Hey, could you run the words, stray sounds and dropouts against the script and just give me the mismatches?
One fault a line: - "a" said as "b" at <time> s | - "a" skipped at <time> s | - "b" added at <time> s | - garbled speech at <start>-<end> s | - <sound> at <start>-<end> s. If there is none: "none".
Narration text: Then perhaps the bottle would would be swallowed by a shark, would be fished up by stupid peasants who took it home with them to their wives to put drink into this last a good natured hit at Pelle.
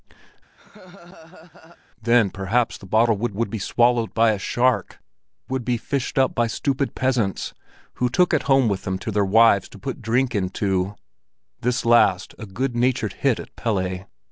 - laugh at 0.6-1.8 s